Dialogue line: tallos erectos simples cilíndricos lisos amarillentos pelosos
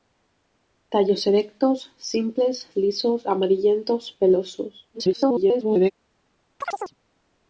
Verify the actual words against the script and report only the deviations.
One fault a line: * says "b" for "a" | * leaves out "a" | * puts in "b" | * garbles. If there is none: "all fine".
* leaves out "cilíndricos"
* garbles